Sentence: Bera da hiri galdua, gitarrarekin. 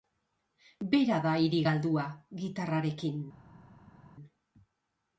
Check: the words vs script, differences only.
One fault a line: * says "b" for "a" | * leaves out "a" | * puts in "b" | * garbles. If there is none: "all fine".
all fine